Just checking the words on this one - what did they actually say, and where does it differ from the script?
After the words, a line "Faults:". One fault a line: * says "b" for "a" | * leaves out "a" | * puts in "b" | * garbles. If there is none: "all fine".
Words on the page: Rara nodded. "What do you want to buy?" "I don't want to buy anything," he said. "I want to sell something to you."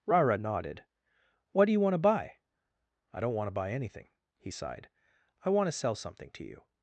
Rara nodded. "What do you want to buy?" "I don't want to buy anything," he sighed. "I want to sell something to you."
Faults:
* says "sighed" for "said"